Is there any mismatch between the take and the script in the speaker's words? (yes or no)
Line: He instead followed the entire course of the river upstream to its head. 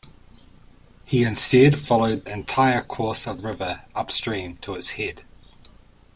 yes